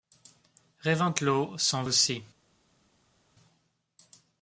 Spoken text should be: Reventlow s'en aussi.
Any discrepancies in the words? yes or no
no